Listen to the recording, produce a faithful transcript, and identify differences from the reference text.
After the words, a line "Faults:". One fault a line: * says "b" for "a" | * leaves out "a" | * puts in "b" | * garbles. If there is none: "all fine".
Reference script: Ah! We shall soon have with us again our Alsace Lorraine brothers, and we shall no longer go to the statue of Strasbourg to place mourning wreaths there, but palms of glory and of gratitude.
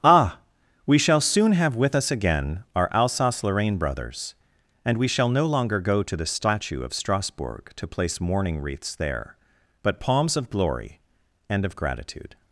Ah! We shall soon have with us again our Alsace Lorraine brothers, and we shall no longer go to the statue of Strasbourg to place mourning wreaths there, but palms of glory and of gratitude.
Faults:
all fine